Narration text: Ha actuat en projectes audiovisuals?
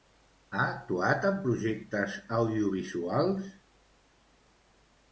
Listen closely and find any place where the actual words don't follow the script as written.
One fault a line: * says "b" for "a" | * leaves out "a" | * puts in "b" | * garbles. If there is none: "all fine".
all fine